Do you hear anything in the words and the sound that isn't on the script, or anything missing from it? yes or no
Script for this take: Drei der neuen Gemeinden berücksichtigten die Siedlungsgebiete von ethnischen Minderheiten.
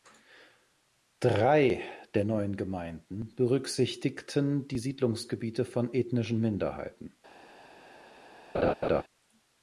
yes